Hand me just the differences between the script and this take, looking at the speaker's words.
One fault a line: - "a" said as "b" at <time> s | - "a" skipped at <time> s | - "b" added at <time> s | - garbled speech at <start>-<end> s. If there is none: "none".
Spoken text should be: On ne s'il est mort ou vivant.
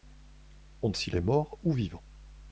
none